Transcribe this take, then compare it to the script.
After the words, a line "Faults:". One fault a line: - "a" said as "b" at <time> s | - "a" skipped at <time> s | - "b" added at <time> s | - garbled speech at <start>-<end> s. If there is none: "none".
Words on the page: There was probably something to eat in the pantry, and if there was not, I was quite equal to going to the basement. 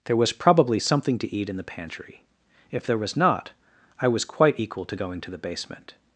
There was probably something to eat in the pantry, if there was not, I was quite equal to going to the basement.
Faults:
- "and" skipped at 2.2 s